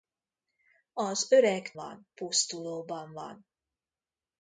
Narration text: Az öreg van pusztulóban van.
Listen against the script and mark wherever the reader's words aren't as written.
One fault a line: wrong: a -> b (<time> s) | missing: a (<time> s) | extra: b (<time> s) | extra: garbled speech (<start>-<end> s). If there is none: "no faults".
no faults